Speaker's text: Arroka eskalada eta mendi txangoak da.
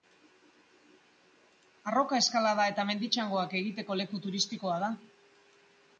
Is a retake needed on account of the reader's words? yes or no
yes